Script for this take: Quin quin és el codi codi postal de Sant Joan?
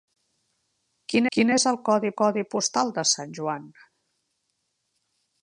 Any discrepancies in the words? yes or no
no